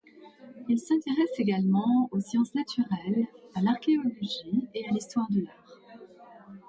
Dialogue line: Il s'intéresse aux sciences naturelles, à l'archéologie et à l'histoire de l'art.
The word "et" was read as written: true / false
true